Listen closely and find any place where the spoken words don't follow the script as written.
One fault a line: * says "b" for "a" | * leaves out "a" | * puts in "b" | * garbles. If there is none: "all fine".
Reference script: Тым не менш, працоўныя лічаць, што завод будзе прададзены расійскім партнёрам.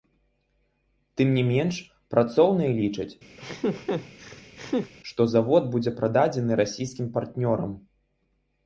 all fine